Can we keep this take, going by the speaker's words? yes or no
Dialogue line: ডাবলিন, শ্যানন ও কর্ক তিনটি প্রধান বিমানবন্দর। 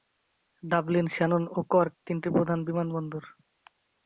yes